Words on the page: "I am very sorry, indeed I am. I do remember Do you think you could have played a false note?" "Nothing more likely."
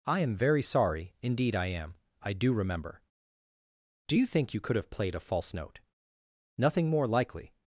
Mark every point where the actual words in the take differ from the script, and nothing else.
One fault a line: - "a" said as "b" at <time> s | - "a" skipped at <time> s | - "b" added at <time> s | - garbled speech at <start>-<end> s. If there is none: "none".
none